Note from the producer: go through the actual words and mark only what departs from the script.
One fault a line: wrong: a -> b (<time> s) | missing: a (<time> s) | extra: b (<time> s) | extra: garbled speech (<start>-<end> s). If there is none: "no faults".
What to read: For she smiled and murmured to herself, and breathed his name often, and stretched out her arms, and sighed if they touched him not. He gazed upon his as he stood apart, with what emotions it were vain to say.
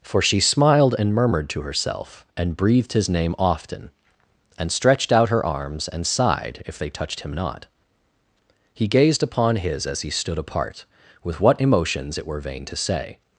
no faults